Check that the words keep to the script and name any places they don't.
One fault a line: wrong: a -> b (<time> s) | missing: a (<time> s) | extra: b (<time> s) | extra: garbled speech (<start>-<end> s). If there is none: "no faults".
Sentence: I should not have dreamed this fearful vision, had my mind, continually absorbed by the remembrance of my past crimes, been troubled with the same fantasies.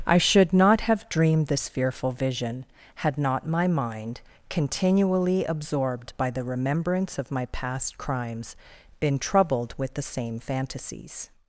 extra: not (3.2 s)